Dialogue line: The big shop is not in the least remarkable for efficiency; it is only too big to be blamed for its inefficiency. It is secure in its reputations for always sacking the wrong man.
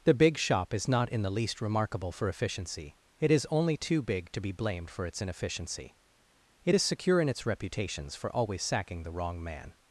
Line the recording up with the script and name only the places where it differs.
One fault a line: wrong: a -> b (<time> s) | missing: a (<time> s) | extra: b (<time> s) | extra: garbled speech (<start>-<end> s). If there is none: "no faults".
no faults